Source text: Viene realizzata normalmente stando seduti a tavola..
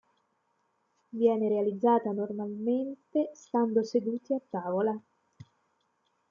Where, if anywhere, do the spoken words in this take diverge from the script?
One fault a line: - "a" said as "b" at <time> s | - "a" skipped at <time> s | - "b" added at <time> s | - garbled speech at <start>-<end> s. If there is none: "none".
none